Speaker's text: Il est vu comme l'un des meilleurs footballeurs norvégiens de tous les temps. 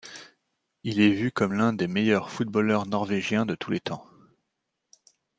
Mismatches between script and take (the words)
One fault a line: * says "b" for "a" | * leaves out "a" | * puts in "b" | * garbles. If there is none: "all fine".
all fine